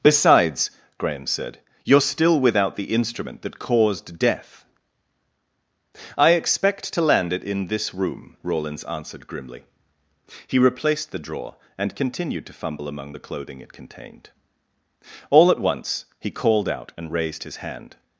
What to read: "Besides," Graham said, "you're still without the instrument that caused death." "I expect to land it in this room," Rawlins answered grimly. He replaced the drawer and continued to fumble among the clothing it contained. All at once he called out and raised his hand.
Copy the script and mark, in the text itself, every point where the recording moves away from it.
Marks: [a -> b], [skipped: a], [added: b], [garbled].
"Besides," Graham said, "you're still without the instrument that caused death." "I expect to land it in this room," Rawlins answered grimly. He replaced the drawer and continued to fumble among the clothing it contained. All at once he called out and raised his hand.